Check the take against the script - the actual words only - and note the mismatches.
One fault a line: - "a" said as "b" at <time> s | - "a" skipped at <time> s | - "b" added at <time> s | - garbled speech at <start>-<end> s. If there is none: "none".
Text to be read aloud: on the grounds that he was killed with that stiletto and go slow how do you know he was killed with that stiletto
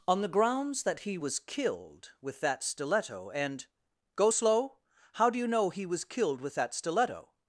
none